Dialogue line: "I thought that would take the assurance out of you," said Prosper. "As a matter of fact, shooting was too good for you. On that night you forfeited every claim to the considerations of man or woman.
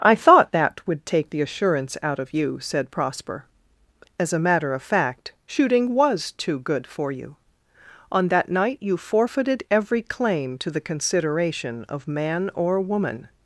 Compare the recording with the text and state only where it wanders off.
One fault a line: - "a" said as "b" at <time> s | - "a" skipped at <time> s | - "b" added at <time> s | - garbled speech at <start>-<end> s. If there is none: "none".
- "considerations" said as "consideration" at 10.8 s